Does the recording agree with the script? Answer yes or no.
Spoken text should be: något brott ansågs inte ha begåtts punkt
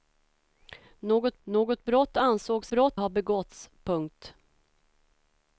no